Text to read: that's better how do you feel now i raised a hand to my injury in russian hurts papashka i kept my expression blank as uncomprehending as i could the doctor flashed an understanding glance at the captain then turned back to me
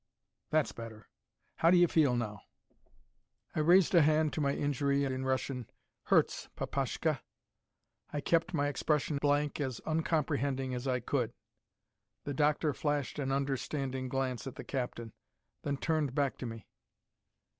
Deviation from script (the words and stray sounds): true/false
false